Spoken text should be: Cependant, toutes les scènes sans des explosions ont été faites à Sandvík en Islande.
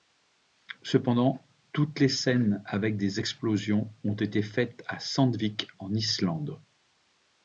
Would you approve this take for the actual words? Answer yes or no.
no